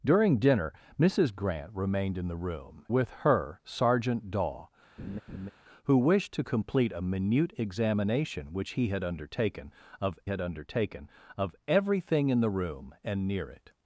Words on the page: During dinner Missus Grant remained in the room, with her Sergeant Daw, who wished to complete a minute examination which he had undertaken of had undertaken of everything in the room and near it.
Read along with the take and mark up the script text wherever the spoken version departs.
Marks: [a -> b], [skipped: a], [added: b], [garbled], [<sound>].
During dinner Missus Grant remained in the room, with her Sergeant Daw, [laugh] who wished to complete a minute examination which he had undertaken of had undertaken of everything in the room and near it.